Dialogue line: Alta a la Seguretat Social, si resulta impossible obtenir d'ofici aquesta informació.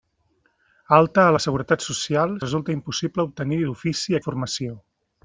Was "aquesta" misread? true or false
true